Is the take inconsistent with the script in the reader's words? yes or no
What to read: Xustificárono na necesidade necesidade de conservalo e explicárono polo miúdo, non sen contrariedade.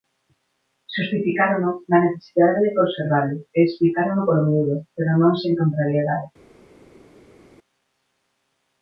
yes